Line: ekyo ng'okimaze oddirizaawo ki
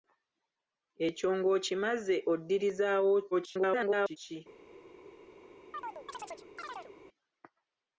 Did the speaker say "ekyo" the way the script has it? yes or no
yes